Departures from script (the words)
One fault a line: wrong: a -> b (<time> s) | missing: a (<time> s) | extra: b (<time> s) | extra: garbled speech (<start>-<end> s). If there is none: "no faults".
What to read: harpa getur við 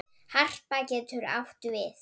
extra: átt (1.3 s)